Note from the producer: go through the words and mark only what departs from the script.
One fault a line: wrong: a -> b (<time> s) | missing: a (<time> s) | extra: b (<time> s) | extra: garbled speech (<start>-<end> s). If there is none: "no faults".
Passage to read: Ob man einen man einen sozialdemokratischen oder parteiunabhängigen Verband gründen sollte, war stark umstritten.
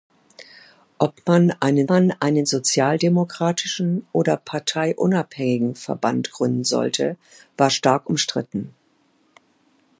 no faults